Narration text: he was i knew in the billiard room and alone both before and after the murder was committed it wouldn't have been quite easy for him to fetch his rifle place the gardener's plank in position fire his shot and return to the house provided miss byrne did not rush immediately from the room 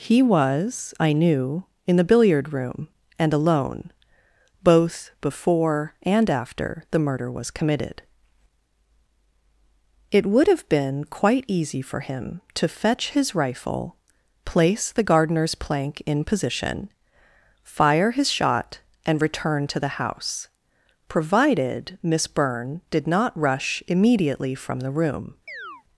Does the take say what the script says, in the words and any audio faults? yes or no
no